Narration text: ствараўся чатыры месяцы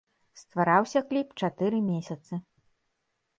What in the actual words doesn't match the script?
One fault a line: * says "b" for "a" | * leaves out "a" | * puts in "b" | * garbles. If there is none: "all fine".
* puts in "кліп"